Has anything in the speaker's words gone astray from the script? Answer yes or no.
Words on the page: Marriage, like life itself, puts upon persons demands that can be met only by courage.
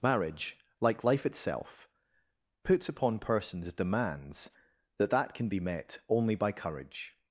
yes